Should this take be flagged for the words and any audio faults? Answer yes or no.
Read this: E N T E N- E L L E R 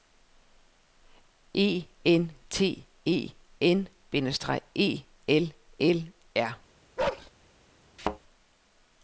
yes